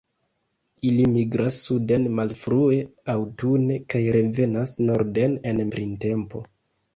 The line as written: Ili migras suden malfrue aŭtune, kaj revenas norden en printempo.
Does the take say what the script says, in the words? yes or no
yes